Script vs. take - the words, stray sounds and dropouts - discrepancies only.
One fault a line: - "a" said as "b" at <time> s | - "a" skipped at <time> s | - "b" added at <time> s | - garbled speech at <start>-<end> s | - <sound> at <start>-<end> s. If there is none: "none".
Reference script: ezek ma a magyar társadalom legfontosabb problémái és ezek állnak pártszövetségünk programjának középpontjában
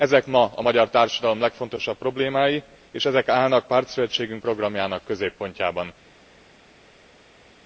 none